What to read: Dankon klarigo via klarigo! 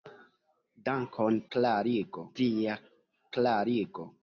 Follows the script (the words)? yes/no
yes